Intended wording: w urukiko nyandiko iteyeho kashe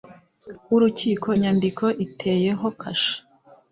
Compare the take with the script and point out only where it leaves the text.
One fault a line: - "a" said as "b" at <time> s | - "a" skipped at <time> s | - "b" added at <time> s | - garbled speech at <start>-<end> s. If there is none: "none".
none